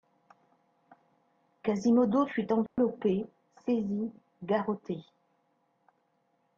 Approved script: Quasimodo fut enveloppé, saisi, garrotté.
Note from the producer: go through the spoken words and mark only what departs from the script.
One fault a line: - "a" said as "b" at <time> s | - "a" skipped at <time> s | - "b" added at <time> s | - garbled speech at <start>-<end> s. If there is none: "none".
none